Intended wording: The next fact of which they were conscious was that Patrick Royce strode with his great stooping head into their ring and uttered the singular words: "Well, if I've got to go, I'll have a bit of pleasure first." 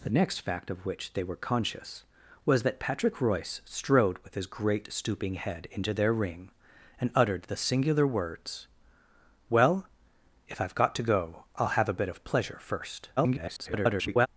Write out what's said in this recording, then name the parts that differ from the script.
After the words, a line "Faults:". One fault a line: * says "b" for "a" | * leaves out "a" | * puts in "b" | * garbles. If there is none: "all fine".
The next fact of which they were conscious was that Patrick Royce strode with his great stooping head into their ring and uttered the singular words: "Well, if I've got to go, I'll have a bit of pleasure first." [garbled]
Faults:
* garbles